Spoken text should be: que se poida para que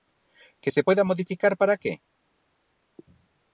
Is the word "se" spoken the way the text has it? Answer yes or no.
yes